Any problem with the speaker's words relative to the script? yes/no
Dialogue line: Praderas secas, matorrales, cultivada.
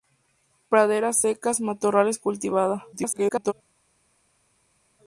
yes